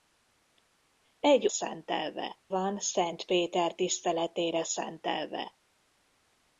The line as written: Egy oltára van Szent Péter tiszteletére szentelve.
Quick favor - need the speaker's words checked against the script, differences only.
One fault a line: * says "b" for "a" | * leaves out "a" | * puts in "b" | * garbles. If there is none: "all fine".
* says "szentelve" for "oltára"